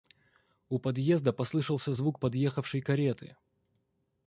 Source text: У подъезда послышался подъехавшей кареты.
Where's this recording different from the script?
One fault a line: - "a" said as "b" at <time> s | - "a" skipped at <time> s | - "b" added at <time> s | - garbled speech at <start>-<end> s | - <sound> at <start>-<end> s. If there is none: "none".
- "звук" added at 1.9 s